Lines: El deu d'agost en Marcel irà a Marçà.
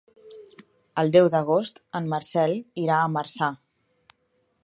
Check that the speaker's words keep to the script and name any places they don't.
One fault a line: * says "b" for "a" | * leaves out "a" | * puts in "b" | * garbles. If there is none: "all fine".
all fine